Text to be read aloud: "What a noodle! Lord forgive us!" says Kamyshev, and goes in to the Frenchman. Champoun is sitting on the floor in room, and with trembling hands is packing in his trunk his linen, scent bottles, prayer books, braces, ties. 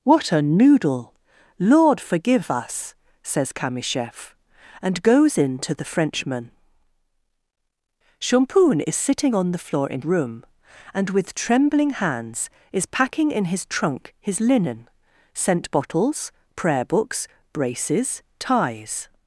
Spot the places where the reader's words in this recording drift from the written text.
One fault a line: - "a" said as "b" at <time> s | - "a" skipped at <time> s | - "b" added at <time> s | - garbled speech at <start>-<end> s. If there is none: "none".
none